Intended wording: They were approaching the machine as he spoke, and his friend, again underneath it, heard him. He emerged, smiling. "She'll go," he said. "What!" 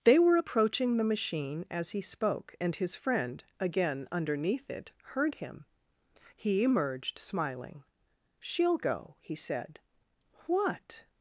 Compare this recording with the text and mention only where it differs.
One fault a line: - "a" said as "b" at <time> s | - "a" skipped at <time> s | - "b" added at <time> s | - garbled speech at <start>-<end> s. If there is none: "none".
none